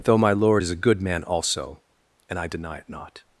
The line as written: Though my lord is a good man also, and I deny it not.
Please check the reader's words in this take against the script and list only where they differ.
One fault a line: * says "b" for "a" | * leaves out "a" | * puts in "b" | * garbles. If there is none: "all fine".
all fine